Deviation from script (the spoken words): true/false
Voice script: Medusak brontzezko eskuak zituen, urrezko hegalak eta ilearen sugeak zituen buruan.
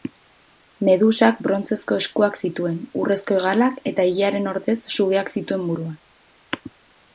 true